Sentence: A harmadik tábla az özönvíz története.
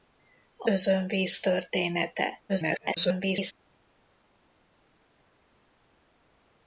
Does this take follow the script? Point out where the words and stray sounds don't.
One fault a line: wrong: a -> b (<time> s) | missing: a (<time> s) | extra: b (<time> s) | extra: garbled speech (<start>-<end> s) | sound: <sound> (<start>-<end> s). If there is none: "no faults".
missing: harmadik tábla az (0.7 s)
extra: garbled speech (2.5-3.5 s)